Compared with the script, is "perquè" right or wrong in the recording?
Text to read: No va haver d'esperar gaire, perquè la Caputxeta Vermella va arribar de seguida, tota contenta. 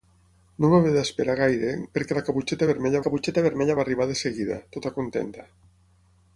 right